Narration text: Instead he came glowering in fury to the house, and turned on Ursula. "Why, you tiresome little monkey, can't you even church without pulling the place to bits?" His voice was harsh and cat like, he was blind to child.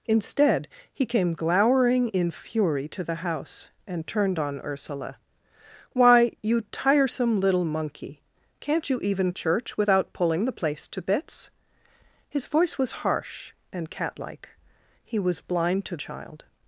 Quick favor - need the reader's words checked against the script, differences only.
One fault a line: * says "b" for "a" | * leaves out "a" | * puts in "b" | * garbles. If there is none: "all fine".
all fine